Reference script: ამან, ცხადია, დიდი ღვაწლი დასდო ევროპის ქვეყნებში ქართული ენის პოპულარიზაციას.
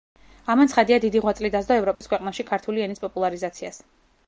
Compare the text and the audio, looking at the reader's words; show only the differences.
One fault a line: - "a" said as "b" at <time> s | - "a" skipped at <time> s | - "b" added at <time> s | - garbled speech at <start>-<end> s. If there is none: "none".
none